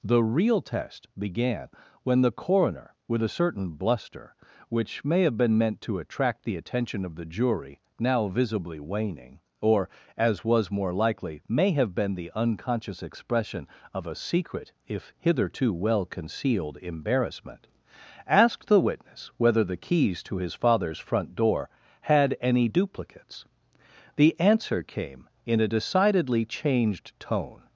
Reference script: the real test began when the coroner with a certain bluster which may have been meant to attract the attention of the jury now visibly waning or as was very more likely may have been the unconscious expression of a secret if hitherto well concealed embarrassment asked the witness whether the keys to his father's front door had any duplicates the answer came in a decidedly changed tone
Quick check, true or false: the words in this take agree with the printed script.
false